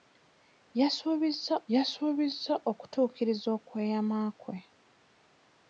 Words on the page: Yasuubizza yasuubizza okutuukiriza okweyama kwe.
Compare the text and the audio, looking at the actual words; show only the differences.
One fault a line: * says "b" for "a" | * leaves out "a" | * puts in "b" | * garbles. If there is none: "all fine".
all fine